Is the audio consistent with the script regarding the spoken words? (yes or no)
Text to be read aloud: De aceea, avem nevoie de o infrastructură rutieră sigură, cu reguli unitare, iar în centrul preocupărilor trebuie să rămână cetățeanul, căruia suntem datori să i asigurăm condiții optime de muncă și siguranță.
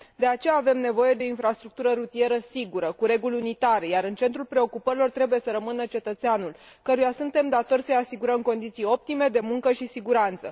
yes